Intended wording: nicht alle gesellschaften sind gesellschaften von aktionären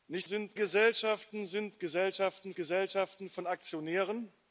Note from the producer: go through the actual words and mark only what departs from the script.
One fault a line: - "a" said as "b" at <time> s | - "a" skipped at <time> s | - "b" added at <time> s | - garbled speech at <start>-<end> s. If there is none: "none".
- "alle" said as "sind" at 0.2 s
- "gesellschaften" added at 2.6 s